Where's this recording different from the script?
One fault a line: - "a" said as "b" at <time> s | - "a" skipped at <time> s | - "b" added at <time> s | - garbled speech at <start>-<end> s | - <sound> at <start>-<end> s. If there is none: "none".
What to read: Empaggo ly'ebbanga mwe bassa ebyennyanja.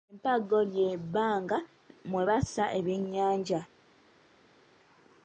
none